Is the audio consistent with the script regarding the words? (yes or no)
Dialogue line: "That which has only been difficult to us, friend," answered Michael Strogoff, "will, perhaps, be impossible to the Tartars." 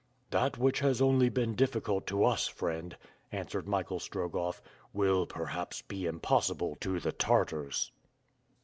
yes